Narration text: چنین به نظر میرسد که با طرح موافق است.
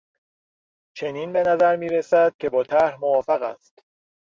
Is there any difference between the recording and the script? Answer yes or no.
no